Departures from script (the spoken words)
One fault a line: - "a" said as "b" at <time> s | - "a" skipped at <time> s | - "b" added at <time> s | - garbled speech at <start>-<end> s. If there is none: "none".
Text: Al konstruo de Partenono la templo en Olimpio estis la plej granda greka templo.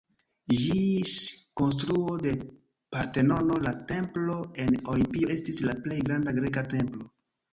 - "Al" said as "Ĝis" at 0.6 s